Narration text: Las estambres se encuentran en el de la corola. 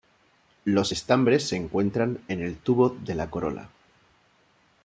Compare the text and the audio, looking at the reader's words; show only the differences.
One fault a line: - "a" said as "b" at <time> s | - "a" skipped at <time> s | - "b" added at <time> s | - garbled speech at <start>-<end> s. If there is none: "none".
- "Las" said as "Los" at 0.7 s
- "tubo" added at 2.6 s